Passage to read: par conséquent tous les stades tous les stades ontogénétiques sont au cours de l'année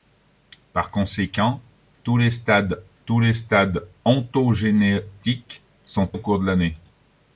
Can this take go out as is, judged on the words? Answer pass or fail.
pass